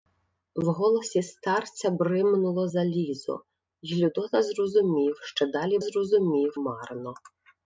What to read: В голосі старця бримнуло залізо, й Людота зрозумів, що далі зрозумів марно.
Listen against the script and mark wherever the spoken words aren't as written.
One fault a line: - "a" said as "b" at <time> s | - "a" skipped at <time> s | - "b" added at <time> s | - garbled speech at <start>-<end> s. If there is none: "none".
none